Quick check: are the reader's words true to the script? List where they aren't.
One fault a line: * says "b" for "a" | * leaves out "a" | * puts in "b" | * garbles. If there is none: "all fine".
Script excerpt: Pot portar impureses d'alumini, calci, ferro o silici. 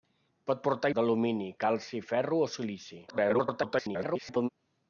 * leaves out "impureses"
* garbles